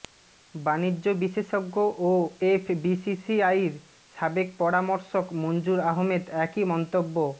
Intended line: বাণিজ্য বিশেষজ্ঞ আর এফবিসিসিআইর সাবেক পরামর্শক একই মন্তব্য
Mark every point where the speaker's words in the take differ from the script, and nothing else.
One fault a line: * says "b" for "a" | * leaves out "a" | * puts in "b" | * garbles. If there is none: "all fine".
* says "ও" for "আর"
* puts in "মঞ্জুর আহমেদ"